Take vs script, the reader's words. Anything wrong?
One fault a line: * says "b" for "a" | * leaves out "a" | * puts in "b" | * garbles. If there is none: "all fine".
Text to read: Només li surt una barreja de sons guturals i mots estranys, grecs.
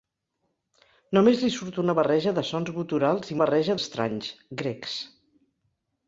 * says "barreja" for "mots"